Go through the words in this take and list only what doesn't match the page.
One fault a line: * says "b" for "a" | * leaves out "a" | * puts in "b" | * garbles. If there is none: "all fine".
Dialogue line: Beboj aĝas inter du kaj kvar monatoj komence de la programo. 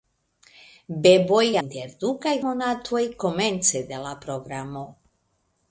* leaves out "aĝas"
* leaves out "kvar"